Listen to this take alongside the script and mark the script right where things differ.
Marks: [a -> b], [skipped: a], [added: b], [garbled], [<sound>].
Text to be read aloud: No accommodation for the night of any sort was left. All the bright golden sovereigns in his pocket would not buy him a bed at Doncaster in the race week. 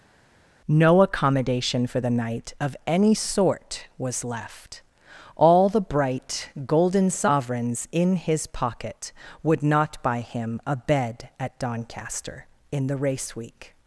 No accommodation for the night of any sort was left. All the bright golden sovereigns in his pocket would not buy him a bed at Doncaster in the race week.